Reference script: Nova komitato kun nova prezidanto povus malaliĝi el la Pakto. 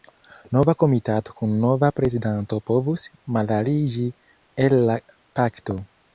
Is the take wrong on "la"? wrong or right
right